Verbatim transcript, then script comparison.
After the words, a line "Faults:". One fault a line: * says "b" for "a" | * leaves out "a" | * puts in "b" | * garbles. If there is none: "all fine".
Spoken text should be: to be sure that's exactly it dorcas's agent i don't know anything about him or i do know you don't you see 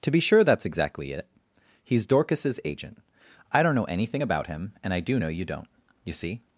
to be sure that's exactly it he's dorcas's agent i don't know anything about him and i do know you don't you see
Faults:
* puts in "he's"
* says "and" for "or"